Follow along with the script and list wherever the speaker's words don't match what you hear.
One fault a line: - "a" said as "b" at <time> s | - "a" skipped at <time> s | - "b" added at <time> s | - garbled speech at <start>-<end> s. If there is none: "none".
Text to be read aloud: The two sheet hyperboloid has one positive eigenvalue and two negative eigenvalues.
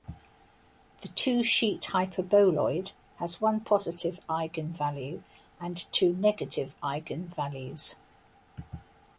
none